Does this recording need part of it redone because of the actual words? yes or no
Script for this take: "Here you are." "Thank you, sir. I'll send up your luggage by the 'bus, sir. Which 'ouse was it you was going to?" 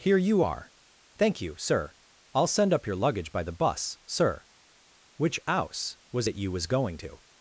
no